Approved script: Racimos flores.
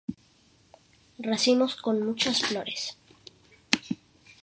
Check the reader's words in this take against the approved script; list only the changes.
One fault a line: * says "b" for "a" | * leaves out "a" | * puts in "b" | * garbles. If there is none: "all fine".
* puts in "con muchas"